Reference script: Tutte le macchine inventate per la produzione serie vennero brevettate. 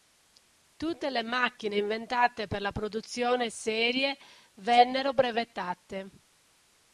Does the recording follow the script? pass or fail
pass